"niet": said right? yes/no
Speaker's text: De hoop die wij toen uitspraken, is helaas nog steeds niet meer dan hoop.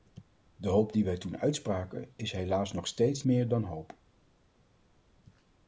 no